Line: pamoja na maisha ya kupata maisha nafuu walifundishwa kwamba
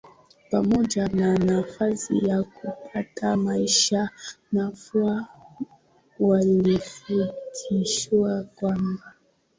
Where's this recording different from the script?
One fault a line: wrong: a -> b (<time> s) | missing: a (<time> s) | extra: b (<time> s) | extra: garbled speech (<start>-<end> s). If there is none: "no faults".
wrong: maisha -> nafasi (1.4 s)